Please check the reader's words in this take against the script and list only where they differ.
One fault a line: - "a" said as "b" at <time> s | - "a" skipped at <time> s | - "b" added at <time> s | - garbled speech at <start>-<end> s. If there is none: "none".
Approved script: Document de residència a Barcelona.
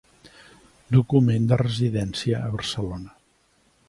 none